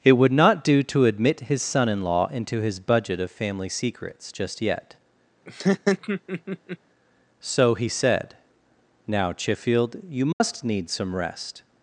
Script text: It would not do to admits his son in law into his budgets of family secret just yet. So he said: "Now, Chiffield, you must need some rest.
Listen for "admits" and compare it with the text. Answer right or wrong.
wrong